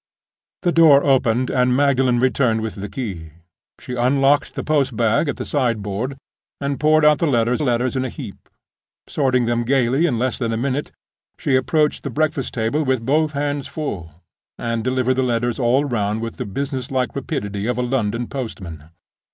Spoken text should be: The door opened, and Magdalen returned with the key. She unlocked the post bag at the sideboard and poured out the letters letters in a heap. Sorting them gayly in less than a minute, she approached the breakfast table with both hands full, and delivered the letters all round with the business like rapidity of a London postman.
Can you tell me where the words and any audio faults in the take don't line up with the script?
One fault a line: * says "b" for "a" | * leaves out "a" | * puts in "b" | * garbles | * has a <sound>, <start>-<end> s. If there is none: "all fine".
all fine